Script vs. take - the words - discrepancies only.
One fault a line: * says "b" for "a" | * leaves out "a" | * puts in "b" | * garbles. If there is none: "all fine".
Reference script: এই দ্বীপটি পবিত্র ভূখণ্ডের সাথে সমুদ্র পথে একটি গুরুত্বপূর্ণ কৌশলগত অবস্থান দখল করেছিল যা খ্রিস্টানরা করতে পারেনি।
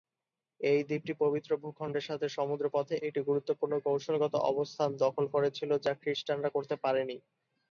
all fine